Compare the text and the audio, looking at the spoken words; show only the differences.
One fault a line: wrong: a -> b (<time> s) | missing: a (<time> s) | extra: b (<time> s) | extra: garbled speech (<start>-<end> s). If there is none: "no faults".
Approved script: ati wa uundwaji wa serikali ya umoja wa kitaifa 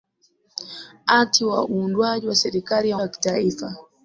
missing: umoja (3.0 s)